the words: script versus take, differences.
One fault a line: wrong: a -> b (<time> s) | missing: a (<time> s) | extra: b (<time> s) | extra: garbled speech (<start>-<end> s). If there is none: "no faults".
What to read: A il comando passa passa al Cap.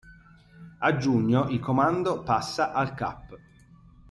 extra: giugno (1.0 s)
missing: passa (2.7 s)